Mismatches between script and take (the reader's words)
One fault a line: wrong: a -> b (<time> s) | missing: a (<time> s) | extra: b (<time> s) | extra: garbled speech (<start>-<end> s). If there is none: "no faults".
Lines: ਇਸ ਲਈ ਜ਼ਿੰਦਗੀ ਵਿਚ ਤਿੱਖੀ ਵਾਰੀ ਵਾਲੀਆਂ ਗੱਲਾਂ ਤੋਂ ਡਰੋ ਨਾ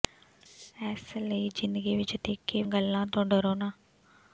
missing: ਵਾਰੀ ਵਾਲੀਆਂ (2.6 s)